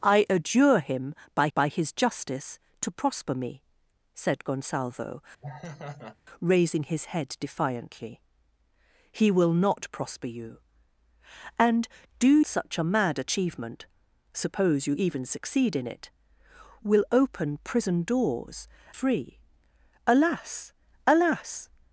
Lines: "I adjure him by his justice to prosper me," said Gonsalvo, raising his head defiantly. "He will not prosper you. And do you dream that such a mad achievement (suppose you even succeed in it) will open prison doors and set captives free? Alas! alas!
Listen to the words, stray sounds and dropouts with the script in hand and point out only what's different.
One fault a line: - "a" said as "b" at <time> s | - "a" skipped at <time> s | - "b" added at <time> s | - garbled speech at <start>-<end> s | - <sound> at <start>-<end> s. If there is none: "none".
- "by" added at 1.5 s
- laugh at 5.4-6.2 s
- "you dream that" skipped at 12.4 s
- "and set captives" skipped at 18.7 s